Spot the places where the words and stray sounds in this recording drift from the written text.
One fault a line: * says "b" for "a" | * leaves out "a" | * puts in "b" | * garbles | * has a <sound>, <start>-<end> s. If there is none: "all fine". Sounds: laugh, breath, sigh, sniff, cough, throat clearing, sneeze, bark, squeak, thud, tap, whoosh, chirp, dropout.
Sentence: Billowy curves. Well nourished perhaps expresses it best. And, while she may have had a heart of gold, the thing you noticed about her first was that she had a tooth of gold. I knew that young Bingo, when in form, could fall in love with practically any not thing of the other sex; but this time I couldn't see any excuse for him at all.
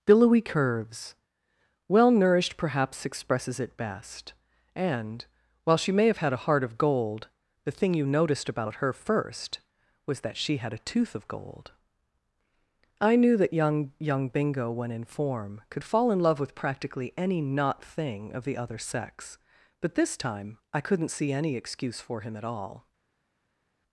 * puts in "young"